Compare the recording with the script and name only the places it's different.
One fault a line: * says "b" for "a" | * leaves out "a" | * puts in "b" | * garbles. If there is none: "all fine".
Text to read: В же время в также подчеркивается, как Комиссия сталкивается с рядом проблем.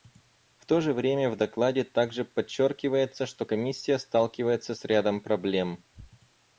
* puts in "то"
* puts in "докладе"
* says "что" for "как"